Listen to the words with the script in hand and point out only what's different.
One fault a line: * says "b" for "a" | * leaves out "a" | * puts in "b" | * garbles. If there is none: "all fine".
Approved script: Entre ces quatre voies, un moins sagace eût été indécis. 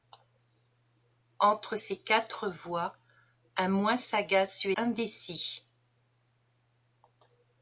* leaves out "été"